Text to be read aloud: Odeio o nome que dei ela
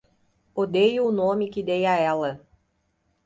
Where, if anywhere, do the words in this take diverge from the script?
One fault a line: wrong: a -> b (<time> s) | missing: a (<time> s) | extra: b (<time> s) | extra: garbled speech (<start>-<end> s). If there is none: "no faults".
extra: a (1.8 s)